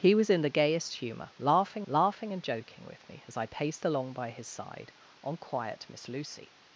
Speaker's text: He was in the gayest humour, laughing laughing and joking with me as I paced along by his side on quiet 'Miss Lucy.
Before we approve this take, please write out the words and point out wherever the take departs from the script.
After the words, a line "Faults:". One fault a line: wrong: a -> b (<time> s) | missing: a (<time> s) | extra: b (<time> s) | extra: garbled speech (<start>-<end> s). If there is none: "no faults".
He was in the gayest humour, laughing laughing and joking with me as I paced along by his side on quiet 'Miss Lucy.
Faults:
no faults